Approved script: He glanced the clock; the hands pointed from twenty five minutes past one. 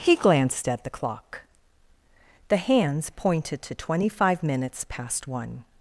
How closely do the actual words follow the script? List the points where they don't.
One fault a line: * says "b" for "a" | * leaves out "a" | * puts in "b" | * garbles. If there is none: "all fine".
* puts in "at"
* says "to" for "from"